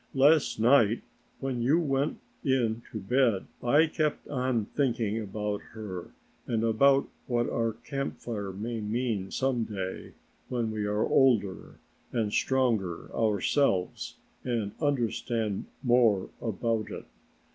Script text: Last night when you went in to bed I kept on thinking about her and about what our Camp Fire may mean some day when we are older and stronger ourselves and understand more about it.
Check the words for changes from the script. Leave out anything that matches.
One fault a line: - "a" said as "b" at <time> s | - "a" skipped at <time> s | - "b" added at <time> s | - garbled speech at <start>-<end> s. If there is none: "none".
none